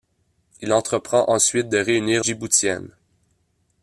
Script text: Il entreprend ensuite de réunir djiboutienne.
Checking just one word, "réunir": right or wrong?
right